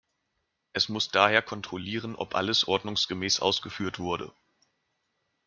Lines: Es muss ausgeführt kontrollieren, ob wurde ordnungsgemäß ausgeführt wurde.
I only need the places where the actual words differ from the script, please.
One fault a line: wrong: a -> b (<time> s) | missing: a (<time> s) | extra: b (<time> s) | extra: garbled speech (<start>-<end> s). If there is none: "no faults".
wrong: ausgeführt -> daher (1.1 s)
wrong: wurde -> alles (2.3 s)